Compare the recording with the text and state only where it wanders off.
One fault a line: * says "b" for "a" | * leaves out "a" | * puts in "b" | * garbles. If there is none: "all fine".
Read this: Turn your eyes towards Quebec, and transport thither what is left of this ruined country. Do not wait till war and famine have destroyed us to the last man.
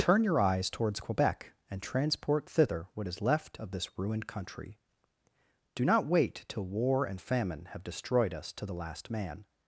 all fine